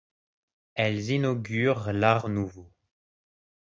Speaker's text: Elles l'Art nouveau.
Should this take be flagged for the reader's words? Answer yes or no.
yes